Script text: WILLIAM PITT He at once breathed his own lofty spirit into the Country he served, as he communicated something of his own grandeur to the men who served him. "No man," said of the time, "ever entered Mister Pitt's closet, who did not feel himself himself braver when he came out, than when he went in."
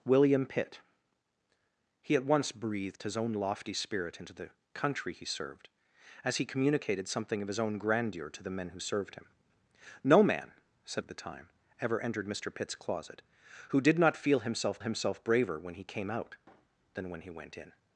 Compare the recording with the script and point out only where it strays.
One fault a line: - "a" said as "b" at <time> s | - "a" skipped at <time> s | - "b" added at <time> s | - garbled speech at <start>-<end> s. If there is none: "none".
none